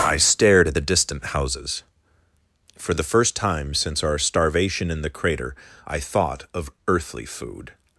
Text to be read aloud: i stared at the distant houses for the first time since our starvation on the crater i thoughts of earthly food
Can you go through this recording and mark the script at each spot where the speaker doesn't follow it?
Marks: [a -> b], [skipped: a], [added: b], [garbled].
i stared at the distant houses for the first time since our starvation [on -> in] the crater i [thoughts -> thought] of earthly food